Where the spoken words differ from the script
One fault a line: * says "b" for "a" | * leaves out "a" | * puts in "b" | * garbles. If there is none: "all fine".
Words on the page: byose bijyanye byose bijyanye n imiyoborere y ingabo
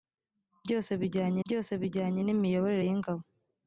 all fine